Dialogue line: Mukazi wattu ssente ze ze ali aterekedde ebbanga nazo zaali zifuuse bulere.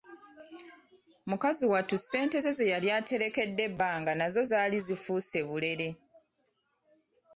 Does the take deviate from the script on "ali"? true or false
true